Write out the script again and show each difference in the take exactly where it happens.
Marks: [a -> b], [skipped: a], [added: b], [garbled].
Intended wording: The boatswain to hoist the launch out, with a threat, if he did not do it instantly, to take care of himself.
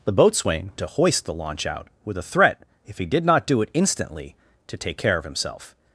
The boatswain to hoist the launch out, with a threat, if he did not do it instantly, to take care of himself.